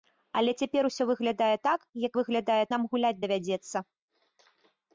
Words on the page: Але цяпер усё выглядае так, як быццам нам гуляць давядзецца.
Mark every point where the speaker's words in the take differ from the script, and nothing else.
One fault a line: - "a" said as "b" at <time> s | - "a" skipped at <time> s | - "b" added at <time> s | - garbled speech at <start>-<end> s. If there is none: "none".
- "быццам" said as "выглядае" at 2.2 s